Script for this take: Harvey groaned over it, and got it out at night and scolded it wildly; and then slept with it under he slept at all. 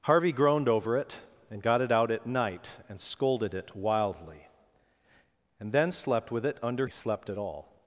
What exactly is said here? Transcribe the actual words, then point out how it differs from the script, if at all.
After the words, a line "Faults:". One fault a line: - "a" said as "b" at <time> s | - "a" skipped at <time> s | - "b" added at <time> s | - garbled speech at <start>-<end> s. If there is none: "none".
Harvey groaned over it, and got it out at night and scolded it wildly; and then slept with it under he slept at all.
Faults:
none